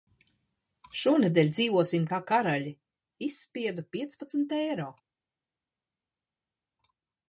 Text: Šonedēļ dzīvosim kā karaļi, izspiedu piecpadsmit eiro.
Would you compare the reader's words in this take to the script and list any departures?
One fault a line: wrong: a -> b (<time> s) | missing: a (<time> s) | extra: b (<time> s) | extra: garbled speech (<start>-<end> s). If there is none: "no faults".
no faults